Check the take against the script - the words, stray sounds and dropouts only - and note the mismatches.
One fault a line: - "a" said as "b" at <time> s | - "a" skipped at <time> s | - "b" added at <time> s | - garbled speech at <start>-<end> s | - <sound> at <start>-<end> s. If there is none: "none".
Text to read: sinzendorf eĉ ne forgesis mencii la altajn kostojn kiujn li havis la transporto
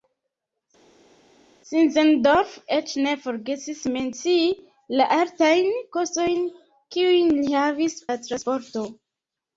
none